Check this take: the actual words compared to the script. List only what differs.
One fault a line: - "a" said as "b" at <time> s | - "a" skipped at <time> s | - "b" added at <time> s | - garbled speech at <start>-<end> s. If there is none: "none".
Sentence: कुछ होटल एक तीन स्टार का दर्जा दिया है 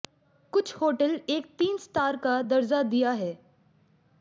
none